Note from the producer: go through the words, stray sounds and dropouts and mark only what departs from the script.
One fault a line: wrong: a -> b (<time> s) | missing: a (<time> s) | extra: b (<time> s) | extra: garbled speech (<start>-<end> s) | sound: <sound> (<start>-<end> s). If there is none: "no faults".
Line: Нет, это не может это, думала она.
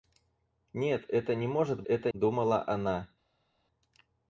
no faults